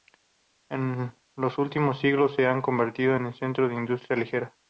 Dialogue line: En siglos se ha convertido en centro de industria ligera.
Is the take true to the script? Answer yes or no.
no